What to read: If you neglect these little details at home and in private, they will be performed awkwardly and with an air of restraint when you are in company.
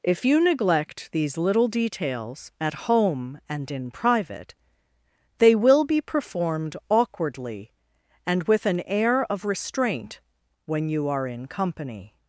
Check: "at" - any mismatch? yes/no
no